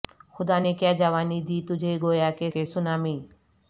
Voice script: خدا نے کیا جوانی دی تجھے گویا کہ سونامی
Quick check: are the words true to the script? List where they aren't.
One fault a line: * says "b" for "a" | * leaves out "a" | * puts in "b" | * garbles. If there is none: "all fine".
* puts in "کہ"